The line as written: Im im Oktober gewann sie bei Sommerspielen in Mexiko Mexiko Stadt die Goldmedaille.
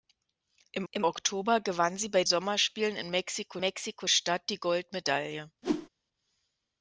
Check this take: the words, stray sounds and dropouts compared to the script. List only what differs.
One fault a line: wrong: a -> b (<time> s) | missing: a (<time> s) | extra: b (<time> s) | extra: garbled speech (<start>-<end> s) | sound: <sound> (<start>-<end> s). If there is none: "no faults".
sound: whoosh (5.6-5.9 s)